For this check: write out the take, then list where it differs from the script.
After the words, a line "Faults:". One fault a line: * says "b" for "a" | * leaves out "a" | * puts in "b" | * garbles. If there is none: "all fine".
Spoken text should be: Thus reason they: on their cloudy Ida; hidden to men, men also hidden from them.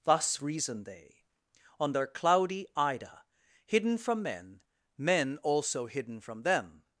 Thus reason they: on their cloudy Ida; hidden from men, men also hidden from them.
Faults:
* says "from" for "to"